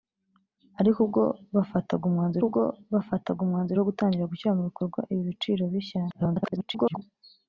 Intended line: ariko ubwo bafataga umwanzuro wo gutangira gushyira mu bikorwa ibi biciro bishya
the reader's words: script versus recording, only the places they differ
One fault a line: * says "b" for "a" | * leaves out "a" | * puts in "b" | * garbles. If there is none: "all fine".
* puts in "ubwo bafataga umwanzuro"
* garbles